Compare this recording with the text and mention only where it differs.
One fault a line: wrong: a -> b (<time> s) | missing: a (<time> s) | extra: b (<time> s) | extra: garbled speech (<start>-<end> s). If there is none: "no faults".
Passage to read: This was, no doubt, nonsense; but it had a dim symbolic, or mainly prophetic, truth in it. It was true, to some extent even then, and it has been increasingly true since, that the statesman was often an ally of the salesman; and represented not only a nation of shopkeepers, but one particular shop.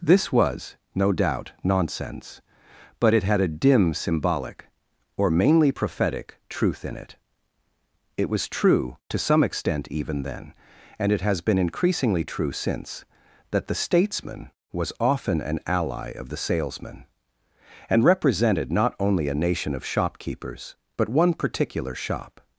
no faults